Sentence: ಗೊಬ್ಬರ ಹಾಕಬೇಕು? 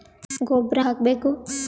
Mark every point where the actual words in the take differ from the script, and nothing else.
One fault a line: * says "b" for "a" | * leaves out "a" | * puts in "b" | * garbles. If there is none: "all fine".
all fine